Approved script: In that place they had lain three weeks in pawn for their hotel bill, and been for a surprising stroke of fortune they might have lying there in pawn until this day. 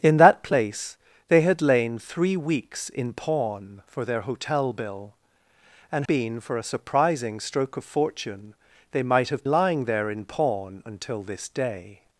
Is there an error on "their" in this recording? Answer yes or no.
no